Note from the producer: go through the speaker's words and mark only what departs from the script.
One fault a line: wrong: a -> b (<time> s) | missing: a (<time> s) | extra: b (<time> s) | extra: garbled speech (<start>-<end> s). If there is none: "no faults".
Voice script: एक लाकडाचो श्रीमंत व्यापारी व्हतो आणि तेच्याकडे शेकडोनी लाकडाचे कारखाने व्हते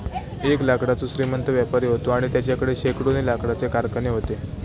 no faults